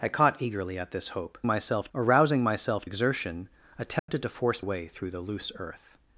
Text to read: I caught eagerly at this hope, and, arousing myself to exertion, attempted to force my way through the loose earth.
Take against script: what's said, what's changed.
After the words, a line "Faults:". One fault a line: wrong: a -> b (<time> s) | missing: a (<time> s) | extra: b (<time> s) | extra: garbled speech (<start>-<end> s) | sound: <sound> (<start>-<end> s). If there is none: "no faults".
I caught eagerly at this hope, myself, arousing myself exertion, attempted to force way through the loose earth.
Faults:
wrong: and -> myself (1.5 s)
missing: to (2.8 s)
sound: dropout (4.0-4.1 s)
missing: my (4.7 s)